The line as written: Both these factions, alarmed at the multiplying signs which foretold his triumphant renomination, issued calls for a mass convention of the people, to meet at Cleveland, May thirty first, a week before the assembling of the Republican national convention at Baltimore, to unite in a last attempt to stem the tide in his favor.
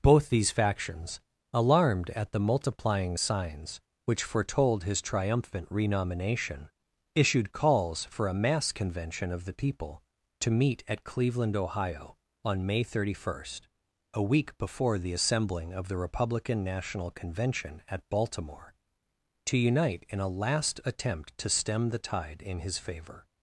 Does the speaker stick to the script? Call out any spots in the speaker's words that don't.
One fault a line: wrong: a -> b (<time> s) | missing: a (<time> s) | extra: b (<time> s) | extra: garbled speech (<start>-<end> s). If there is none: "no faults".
extra: Ohio on (11.6 s)